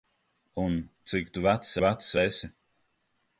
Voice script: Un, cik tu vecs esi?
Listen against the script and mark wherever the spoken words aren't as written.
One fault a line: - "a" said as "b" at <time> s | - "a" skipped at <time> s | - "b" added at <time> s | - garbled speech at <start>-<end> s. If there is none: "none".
- "vecs" added at 1.8 s